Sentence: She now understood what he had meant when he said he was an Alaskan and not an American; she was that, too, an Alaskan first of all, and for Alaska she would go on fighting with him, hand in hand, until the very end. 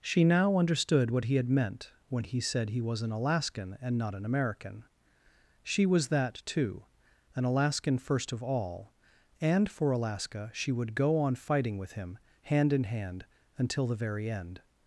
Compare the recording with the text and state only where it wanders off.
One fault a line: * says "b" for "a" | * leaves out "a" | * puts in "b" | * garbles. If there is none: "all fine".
all fine